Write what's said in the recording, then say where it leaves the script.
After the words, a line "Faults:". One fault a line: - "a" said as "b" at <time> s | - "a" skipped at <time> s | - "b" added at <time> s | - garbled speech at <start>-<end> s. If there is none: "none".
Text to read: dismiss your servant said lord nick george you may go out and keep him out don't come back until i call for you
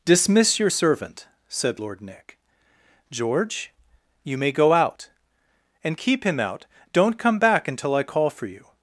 dismiss your servant said lord nick george you may go out and keep him out don't come back until i call for you
Faults:
none